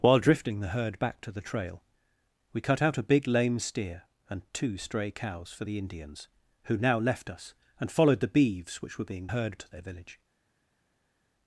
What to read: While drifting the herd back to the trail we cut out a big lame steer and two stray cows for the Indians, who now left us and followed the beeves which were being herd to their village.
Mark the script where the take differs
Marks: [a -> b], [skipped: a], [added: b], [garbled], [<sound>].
While drifting the herd back to the trail we cut out a big lame steer and two stray cows for the Indians, who now left us and followed the beeves which were being herd to their village.